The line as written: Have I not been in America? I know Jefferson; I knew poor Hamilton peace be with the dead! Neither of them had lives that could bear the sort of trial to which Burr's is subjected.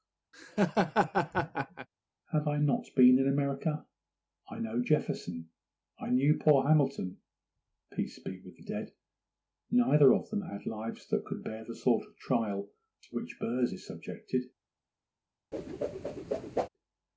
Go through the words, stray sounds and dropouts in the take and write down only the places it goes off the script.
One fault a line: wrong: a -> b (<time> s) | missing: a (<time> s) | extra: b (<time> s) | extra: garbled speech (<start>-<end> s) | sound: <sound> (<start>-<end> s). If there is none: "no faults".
sound: laugh (0.3-1.9 s)
sound: whoosh (15.5-16.7 s)